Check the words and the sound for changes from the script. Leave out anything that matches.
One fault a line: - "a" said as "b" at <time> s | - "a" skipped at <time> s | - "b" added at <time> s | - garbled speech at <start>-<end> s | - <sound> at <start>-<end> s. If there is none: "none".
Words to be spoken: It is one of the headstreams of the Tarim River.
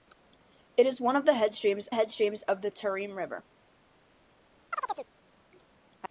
- "headstreams" added at 1.9 s
- chirp at 4.7-5.1 s